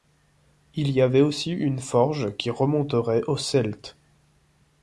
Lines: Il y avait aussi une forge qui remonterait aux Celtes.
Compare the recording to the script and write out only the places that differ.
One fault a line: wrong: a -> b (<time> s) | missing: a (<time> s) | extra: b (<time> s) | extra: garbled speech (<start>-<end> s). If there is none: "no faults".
no faults